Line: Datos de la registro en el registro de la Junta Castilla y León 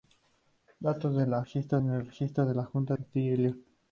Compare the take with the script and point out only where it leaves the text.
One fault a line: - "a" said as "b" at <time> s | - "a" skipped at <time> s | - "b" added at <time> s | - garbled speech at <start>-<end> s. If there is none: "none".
none